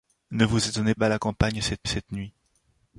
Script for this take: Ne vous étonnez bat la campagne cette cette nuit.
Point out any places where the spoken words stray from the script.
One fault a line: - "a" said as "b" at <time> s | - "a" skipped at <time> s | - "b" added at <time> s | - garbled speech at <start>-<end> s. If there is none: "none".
none